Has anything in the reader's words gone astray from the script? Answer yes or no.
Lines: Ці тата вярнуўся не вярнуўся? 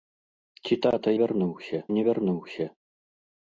no